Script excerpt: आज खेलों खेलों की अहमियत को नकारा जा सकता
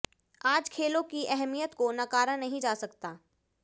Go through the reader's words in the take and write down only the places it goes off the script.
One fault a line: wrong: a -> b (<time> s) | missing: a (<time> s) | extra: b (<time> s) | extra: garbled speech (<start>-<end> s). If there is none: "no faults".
missing: खेलों (1.0 s)
extra: नहीं (2.4 s)